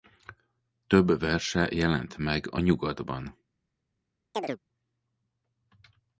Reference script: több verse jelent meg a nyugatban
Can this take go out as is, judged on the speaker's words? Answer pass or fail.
pass